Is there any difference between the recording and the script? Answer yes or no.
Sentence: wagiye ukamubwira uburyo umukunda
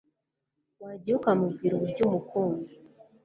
no